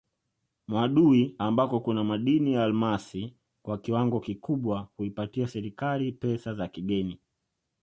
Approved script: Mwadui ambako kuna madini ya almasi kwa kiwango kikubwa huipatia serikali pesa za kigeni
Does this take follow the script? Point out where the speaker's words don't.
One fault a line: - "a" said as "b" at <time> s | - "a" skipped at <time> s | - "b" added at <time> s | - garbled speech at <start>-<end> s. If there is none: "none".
none